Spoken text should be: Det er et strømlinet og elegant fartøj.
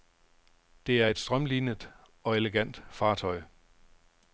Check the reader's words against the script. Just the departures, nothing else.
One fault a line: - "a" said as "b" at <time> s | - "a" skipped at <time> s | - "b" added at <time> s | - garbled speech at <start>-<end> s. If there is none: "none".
none